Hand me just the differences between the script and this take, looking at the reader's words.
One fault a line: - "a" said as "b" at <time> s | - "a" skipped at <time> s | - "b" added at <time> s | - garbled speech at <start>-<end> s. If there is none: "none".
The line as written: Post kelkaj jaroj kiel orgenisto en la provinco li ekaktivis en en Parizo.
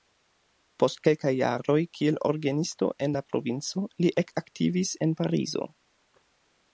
- "en" skipped at 5.2 s